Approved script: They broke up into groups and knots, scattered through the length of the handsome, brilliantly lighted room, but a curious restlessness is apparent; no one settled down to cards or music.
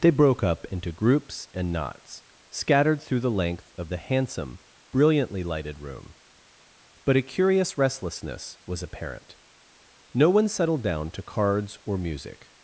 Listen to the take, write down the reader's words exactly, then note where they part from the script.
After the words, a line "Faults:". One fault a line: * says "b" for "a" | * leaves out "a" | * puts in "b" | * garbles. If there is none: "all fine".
They broke up into groups and knots, scattered through the length of the handsome, brilliantly lighted room, but a curious restlessness was apparent; no one settled down to cards or music.
Faults:
* says "was" for "is"